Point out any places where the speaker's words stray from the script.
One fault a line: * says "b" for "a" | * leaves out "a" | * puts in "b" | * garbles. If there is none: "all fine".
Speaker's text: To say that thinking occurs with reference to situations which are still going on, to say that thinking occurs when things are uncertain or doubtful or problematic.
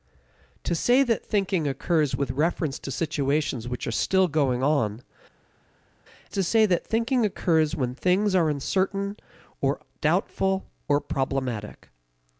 all fine